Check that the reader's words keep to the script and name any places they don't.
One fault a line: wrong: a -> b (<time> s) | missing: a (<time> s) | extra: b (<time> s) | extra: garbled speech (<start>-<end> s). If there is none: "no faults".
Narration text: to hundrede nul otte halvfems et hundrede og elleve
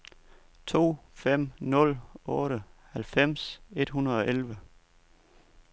wrong: hundrede -> fem (1.1 s)